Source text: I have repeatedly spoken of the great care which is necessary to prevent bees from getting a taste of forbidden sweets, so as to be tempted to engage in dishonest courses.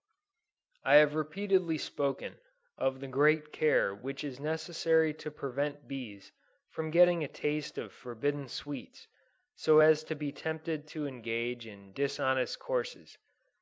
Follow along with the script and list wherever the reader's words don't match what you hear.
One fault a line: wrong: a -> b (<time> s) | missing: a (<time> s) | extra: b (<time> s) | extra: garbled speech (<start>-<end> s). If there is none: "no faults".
no faults